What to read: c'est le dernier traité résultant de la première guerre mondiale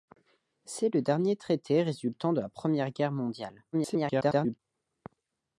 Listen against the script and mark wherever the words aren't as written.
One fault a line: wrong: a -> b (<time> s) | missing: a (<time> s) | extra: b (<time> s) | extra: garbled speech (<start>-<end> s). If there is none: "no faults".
extra: garbled speech (3.7-4.6 s)